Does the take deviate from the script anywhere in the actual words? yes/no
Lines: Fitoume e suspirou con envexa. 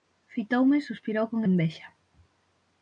no